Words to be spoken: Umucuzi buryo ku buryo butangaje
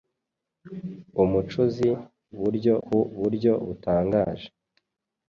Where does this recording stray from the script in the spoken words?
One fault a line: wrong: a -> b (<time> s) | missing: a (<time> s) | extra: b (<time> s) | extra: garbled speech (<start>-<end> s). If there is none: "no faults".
no faults